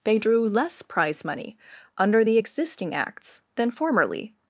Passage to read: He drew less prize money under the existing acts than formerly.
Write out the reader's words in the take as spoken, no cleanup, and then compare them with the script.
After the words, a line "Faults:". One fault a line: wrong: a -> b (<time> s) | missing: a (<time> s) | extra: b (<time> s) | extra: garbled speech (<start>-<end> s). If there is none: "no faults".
They drew less prize money under the existing acts than formerly.
Faults:
wrong: He -> They (0.0 s)